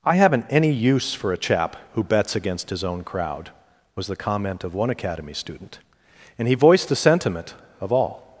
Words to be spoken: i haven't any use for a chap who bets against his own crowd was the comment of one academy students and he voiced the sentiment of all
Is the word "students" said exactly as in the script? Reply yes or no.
no